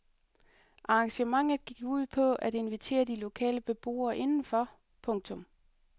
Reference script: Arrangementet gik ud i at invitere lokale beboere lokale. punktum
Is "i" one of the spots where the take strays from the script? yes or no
yes